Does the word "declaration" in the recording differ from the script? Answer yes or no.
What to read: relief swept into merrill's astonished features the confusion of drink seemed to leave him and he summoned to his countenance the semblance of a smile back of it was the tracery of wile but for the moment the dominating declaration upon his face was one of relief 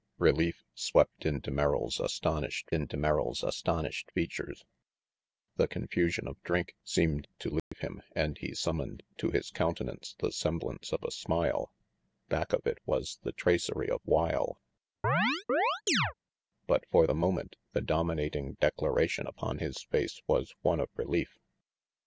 no